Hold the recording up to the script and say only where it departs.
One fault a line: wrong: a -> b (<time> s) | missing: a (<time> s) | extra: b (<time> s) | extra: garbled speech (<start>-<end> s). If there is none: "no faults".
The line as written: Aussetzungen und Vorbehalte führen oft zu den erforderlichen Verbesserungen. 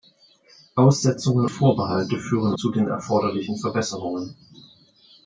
missing: und (1.5 s)
missing: oft (2.5 s)